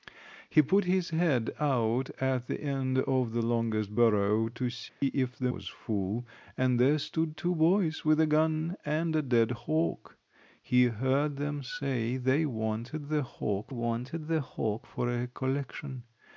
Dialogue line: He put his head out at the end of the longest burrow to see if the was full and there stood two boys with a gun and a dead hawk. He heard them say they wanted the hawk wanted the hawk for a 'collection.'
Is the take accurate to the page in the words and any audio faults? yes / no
no